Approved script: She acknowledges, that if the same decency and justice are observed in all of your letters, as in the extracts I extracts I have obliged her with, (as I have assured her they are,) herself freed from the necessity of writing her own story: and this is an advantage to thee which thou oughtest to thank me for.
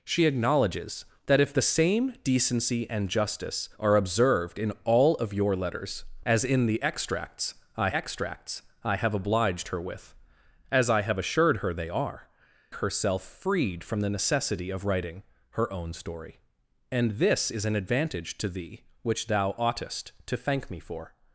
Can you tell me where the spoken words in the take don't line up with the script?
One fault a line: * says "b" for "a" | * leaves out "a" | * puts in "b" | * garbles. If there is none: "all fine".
all fine